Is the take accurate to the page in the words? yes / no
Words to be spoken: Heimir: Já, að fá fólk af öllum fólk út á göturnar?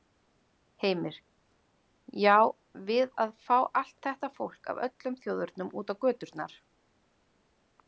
no